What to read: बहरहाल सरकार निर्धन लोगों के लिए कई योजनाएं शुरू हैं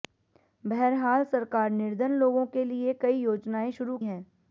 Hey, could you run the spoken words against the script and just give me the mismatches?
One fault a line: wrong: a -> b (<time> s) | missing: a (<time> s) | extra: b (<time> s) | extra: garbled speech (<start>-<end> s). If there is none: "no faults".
no faults